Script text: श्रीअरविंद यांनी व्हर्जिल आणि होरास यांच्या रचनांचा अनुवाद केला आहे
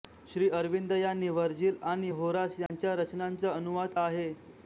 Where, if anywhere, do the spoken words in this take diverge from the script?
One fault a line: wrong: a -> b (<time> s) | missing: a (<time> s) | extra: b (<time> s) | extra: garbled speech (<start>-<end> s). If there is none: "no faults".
missing: केला (3.9 s)